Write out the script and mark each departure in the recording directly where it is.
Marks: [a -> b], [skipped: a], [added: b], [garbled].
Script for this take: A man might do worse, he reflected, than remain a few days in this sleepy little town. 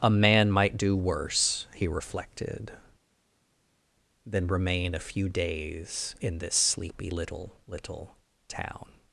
A man might do worse, he reflected, than remain a few days in this sleepy little [added: little] town.